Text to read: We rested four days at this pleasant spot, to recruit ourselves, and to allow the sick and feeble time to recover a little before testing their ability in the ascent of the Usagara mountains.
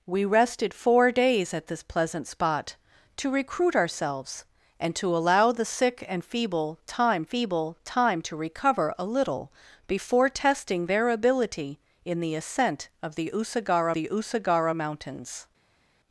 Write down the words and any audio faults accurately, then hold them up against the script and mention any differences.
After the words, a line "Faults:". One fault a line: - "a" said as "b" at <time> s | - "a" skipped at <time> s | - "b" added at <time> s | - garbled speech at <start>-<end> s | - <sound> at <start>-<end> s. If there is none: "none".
We rested four days at this pleasant spot, to recruit ourselves, and to allow the sick and feeble time feeble time to recover a little before testing their ability in the ascent of the Usagara the Usagara mountains.
Faults:
- "feeble time" added at 7.2 s
- "the Usagara" added at 13.9 s